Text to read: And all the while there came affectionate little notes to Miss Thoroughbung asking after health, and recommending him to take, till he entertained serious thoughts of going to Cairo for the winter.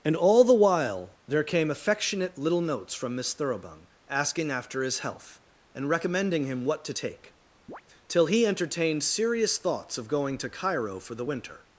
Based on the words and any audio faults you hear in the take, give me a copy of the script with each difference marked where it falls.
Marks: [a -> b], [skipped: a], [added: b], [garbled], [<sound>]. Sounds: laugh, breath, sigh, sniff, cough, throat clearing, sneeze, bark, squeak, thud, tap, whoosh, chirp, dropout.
And all the while there came affectionate little notes [to -> from] Miss Thoroughbung asking after [added: his] health, and recommending him [added: what] to take, [chirp] till he entertained serious thoughts of going to Cairo for the winter.